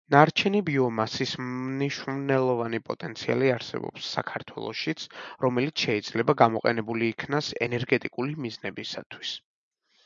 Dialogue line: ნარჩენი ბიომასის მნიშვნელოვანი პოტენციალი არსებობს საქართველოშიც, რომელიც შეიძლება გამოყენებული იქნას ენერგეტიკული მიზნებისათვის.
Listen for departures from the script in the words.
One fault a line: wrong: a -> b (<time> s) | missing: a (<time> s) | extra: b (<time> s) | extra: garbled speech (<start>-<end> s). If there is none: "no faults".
no faults